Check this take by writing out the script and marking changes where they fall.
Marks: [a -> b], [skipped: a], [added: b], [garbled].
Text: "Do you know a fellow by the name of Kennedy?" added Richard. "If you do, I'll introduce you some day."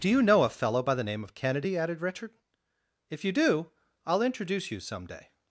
"Do you know a fellow by the name of Kennedy?" added Richard. "If you do, I'll introduce you some day."